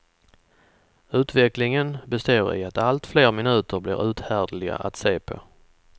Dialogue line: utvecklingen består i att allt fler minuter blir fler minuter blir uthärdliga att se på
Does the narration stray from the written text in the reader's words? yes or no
yes